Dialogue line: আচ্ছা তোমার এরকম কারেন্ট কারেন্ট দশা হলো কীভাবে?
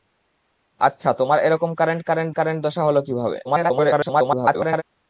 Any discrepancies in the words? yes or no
yes